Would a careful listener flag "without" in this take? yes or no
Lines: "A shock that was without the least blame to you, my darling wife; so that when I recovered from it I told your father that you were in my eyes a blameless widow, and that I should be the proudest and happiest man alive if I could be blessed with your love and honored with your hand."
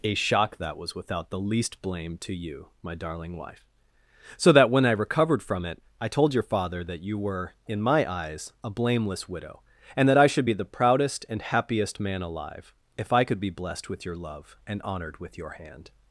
no